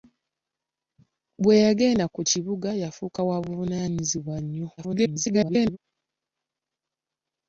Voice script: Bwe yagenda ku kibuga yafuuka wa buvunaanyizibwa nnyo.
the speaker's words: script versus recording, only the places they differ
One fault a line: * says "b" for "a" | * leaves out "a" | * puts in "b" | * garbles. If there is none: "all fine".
* garbles